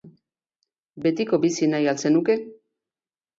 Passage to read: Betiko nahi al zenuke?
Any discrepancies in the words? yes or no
yes